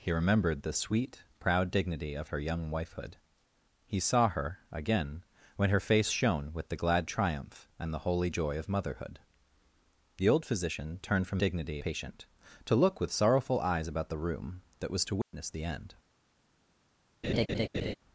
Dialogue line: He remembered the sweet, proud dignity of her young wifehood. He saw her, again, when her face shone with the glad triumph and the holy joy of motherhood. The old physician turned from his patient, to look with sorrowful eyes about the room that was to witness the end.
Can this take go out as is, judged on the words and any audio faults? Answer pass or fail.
fail